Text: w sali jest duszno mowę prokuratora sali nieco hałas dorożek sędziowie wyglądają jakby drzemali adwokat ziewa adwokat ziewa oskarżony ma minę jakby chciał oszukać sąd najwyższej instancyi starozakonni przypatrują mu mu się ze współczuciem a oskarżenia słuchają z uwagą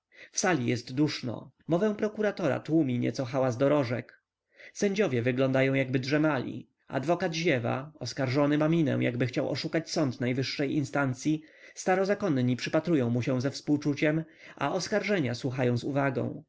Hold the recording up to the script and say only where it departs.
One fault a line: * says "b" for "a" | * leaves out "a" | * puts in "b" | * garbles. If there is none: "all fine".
* says "tłumi" for "sali"
* leaves out "adwokat ziewa"
* leaves out "mu"